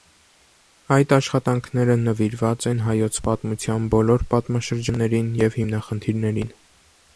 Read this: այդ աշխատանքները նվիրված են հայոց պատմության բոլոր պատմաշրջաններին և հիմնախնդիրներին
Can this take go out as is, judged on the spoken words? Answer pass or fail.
pass